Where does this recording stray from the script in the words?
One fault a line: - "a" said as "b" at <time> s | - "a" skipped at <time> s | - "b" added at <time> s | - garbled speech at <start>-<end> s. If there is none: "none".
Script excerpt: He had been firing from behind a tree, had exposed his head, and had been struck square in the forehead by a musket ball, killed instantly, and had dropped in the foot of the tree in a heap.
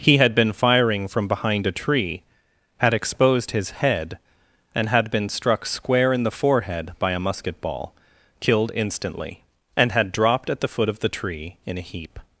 - "in" said as "at" at 10.5 s